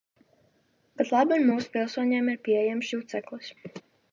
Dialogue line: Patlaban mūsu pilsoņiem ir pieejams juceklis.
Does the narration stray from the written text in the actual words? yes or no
no